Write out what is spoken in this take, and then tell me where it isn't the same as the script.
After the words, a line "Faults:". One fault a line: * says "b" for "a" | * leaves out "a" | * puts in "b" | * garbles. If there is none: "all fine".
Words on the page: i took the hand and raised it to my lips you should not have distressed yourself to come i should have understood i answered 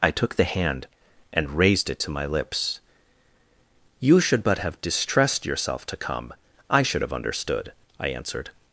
i took the hand and raised it to my lips you should but have distressed yourself to come i should have understood i answered
Faults:
* says "but" for "not"